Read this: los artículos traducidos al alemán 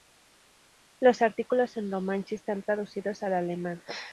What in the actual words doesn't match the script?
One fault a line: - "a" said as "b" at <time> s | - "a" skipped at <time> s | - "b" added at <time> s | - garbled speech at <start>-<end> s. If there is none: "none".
- "en romanche están" added at 1.8 s